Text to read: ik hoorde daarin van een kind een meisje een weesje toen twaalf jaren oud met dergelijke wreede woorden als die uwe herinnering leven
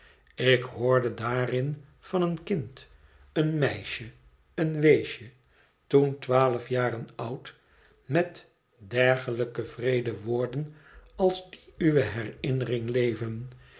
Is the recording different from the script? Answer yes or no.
no